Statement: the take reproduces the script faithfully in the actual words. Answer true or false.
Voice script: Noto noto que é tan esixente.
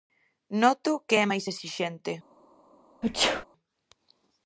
false